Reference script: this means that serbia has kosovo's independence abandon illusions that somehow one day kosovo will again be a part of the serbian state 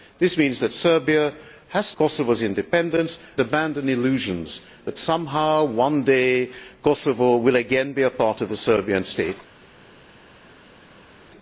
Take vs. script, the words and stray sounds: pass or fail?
pass